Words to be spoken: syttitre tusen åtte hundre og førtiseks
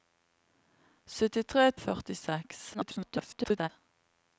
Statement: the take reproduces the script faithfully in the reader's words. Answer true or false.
false